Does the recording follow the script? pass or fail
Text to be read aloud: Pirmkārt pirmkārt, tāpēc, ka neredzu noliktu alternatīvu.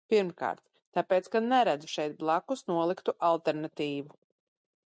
fail